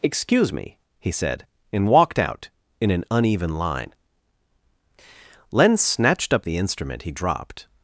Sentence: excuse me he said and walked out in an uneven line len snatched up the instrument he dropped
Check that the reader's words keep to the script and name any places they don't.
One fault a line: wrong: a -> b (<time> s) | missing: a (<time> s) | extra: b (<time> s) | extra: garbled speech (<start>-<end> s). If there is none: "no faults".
no faults